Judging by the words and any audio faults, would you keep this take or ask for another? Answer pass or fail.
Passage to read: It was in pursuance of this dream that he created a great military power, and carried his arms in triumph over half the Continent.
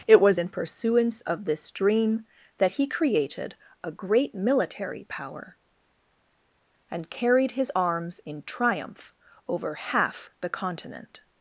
pass